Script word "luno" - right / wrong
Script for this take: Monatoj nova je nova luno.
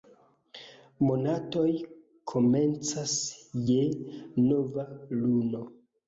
right